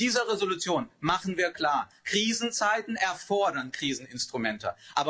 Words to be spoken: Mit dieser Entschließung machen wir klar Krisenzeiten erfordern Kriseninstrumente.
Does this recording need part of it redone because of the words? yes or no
no